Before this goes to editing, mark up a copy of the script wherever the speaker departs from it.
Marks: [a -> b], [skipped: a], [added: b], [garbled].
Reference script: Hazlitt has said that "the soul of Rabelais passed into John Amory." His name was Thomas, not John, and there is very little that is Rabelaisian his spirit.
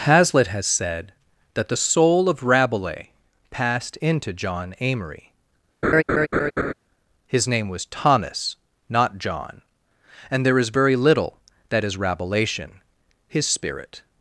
Hazlitt has said that "the soul of Rabelais passed into John Amory." His name was Thomas, not John, and there is very little that is Rabelaisian his spirit.